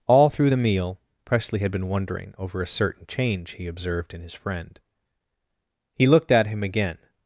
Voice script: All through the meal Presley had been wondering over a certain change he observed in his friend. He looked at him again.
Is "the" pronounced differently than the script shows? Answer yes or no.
no